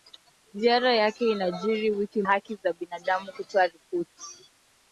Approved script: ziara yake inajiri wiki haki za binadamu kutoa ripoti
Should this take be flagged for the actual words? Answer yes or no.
no